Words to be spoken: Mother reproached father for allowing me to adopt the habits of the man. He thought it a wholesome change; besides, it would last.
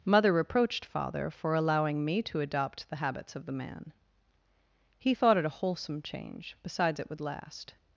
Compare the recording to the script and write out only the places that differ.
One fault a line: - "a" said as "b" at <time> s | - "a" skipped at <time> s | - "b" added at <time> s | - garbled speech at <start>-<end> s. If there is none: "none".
none